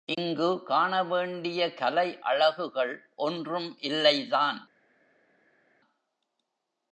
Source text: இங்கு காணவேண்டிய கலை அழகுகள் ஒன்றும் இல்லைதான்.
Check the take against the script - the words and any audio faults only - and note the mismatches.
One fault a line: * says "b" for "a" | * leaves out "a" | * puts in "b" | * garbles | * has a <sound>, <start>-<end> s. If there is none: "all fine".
all fine